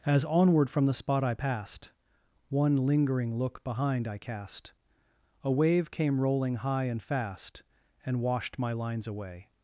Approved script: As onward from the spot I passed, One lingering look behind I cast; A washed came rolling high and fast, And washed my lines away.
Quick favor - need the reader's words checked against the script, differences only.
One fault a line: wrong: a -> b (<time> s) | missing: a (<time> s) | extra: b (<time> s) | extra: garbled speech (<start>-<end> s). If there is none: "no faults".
wrong: washed -> wave (5.5 s)